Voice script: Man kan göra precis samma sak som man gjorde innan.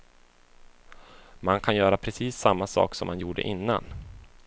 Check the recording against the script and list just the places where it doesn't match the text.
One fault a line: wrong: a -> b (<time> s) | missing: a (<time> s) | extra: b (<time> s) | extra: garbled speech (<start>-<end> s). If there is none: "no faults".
no faults